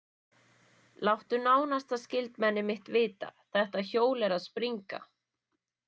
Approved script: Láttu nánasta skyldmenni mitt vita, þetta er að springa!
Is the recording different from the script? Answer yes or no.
yes